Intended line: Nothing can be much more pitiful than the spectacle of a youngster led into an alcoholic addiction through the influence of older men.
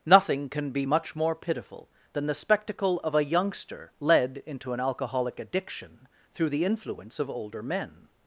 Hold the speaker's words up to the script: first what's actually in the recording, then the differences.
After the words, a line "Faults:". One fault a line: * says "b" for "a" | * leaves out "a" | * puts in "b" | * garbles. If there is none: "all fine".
Nothing can be much more pitiful than the spectacle of a youngster led into an alcoholic addiction through the influence of older men.
Faults:
all fine